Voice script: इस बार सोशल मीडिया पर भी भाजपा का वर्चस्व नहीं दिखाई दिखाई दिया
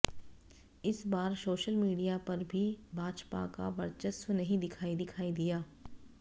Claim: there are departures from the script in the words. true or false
false